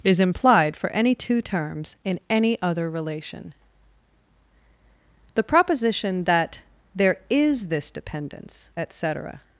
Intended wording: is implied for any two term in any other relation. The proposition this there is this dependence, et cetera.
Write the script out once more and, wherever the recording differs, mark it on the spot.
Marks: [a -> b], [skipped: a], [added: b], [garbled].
is implied for any two [term -> terms] in any other relation. The proposition [this -> that] there is this dependence, et cetera.